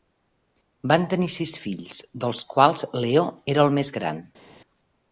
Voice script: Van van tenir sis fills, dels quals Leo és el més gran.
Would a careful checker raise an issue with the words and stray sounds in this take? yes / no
yes